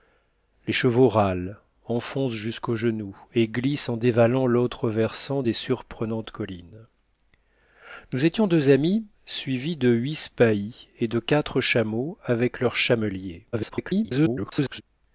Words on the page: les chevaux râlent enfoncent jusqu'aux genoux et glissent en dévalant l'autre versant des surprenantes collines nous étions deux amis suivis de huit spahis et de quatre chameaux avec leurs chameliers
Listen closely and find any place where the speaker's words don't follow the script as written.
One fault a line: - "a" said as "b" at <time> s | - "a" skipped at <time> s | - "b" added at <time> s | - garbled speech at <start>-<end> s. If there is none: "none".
- garbled speech at 13.5-14.8 s